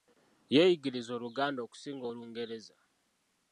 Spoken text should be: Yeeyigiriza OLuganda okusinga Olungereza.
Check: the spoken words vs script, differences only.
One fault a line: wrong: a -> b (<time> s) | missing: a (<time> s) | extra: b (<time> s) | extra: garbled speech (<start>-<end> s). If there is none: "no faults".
no faults